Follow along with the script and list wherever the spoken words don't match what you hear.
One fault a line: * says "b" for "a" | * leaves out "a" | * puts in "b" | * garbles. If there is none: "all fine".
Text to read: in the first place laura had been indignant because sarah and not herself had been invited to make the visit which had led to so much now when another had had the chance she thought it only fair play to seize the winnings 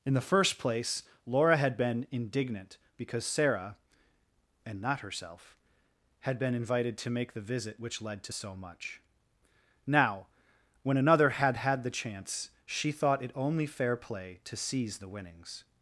* leaves out "had"